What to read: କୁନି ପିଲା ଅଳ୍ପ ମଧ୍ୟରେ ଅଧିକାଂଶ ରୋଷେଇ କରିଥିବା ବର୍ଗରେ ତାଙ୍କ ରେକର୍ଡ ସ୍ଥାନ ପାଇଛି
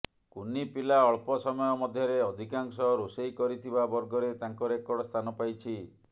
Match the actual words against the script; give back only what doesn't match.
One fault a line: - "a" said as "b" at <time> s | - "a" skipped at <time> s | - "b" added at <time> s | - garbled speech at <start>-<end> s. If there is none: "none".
- "ସମୟ" added at 1.4 s